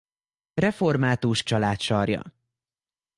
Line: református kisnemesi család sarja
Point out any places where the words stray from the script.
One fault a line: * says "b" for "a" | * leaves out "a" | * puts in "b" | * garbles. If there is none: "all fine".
* leaves out "kisnemesi"